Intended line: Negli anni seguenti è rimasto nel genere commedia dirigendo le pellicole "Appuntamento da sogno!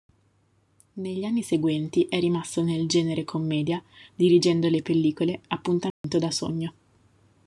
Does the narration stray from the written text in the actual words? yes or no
no